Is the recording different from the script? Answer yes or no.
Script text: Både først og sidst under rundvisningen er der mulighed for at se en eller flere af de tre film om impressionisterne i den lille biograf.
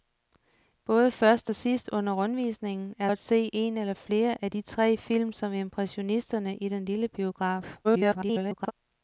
yes